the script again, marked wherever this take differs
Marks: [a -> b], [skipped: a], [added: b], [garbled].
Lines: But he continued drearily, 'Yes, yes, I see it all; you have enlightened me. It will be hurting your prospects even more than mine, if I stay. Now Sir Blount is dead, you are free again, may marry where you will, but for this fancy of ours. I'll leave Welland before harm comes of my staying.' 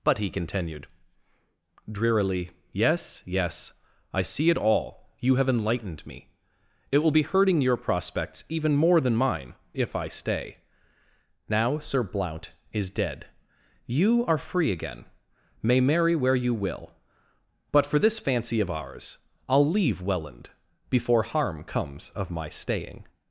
But he continued drearily, 'Yes, yes, I see it all; you have enlightened me. It will be hurting your prospects even more than mine, if I stay. Now Sir Blount is dead, you are free again, may marry where you will, but for this fancy of ours. I'll leave Welland before harm comes of my staying.'